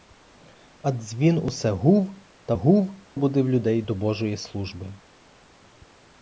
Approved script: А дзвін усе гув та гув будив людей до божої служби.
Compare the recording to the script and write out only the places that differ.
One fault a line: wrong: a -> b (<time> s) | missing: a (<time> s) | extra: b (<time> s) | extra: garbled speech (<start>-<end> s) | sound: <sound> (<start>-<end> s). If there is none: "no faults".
no faults